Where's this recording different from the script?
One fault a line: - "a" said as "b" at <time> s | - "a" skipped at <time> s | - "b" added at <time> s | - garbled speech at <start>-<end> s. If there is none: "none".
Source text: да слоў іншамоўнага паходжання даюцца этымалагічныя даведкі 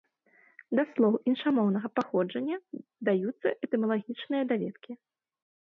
none